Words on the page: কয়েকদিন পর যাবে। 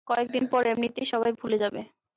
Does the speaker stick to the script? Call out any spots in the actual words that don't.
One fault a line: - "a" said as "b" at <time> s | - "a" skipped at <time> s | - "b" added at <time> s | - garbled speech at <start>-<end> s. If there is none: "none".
- "এমনিতেই সবাই ভুলে" added at 0.7 s